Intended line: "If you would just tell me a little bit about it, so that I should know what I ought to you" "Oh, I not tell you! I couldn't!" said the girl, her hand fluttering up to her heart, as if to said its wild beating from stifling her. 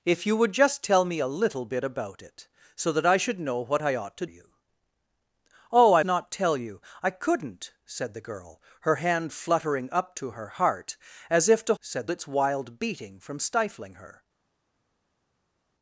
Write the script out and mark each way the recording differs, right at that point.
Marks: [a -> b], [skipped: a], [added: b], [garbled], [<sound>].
"If you would just tell me a little bit about it, so that I should know what I ought to you" "Oh, I not tell you! I couldn't!" said the girl, her hand fluttering up to her heart, as if to said its wild beating from stifling her.